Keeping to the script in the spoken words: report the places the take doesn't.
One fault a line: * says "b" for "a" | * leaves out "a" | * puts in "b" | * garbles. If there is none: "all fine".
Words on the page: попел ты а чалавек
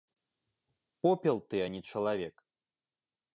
* puts in "не"